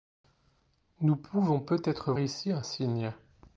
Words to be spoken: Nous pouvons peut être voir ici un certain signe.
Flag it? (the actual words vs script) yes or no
yes